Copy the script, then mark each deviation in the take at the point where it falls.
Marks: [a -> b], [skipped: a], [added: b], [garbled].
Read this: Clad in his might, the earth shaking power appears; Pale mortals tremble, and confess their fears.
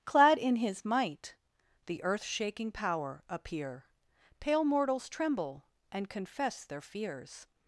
Clad in his might, the earth shaking power [appears; -> appear] Pale mortals tremble, and confess their fears.